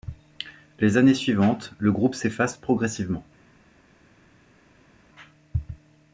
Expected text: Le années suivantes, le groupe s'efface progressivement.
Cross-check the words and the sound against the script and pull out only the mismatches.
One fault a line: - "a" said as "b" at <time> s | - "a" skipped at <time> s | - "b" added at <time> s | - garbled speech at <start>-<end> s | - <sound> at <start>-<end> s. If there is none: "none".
- "Le" said as "Les" at 0.8 s